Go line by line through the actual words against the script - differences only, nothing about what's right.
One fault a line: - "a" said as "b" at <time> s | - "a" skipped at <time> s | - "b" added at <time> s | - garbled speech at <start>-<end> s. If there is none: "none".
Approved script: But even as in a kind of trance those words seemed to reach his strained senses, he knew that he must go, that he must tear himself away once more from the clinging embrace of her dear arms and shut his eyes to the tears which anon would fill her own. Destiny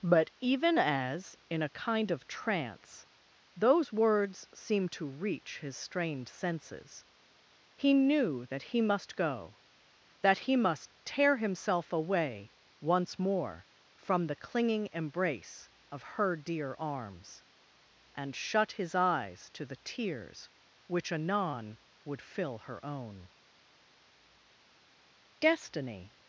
none